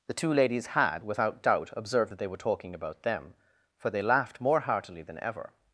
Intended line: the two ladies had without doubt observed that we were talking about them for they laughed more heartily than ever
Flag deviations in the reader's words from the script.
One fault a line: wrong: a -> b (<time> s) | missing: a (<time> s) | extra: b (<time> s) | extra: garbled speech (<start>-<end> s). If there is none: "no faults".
wrong: we -> they (2.2 s)